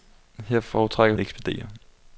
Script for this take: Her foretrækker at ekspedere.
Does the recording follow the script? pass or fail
pass